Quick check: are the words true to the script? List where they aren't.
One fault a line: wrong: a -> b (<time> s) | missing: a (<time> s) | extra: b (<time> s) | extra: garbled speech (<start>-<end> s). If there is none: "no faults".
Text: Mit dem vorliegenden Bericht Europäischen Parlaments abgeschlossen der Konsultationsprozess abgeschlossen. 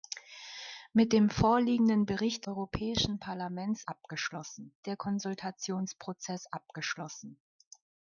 no faults